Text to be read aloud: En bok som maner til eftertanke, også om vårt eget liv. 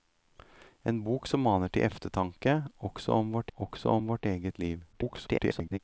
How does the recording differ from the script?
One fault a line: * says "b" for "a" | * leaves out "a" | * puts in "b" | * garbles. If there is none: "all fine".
* puts in "også om vårt"
* garbles